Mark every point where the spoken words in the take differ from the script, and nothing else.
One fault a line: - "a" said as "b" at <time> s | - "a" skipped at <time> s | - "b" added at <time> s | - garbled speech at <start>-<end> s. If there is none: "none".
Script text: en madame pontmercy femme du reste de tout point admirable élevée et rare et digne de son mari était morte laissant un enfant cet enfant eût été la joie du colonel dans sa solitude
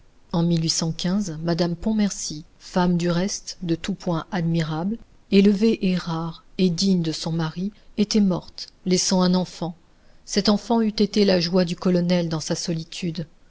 none